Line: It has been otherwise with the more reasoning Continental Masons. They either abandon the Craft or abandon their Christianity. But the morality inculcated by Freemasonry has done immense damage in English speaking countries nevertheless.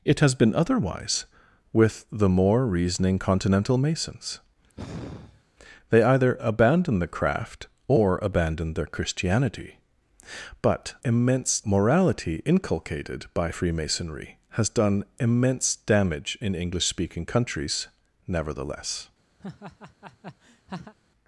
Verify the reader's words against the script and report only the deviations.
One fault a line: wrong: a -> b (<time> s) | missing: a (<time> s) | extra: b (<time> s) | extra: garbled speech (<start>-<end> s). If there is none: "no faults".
wrong: the -> immense (11.0 s)